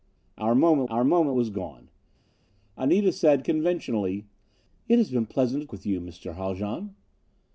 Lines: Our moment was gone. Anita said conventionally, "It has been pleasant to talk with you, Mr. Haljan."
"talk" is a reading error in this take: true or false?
true